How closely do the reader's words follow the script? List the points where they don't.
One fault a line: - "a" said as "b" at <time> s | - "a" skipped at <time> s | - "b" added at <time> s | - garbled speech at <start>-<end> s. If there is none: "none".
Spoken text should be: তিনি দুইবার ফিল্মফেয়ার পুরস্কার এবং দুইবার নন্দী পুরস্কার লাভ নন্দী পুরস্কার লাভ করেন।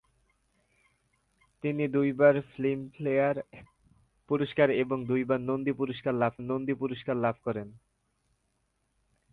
none